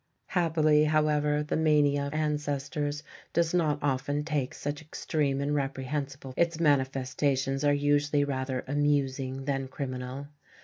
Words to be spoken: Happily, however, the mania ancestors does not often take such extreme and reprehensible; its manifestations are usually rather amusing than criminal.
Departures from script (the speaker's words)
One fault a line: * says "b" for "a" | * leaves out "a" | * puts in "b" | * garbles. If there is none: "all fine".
all fine